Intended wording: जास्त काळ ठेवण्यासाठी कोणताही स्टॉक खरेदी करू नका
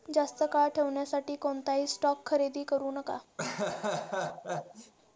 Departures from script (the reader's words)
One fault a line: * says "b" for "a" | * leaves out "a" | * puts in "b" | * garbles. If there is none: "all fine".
all fine